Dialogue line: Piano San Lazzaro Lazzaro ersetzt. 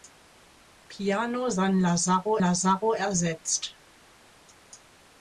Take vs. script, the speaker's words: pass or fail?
pass